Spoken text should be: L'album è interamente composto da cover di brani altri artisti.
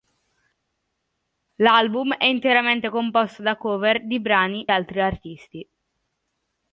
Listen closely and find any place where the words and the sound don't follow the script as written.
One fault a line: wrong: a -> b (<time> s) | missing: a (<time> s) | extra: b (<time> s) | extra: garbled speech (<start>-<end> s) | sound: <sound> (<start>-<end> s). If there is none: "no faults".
no faults